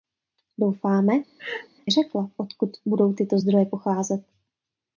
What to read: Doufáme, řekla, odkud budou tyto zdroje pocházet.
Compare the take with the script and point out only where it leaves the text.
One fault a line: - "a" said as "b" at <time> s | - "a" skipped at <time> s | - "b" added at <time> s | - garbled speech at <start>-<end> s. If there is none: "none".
none